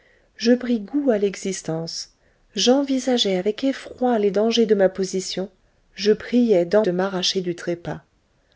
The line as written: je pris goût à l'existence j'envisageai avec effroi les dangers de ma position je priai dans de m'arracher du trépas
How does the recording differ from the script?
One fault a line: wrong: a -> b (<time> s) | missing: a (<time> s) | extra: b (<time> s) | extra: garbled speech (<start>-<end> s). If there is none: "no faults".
no faults